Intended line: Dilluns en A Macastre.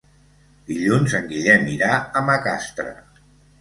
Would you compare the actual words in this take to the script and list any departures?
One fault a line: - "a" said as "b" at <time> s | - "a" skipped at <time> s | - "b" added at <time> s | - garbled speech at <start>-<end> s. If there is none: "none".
- "Guillem irà" added at 1.3 s